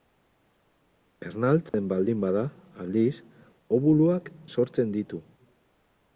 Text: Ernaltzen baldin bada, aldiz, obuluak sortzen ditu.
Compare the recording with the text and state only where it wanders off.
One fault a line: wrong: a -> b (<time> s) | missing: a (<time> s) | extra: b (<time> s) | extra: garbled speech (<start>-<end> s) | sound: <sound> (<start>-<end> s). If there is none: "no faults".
sound: dropout (1.7-1.7 s)